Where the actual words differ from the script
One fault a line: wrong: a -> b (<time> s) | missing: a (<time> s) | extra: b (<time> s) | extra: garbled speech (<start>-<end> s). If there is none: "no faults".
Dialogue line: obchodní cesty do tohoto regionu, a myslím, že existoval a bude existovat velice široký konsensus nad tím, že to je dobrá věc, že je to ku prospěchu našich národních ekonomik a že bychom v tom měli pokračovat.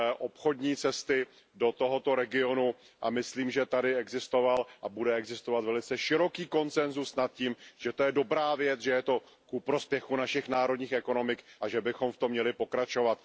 extra: tady (3.6 s)